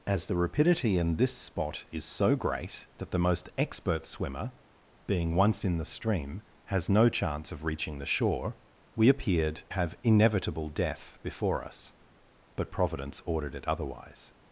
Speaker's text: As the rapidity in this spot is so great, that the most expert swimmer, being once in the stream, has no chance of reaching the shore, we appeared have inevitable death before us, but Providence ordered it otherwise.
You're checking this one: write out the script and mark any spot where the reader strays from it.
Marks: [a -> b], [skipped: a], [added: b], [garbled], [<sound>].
As the rapidity in this spot is so great, that the most expert swimmer, being once in the stream, has no chance of reaching the shore, we appeared have inevitable death before us, but Providence ordered it otherwise.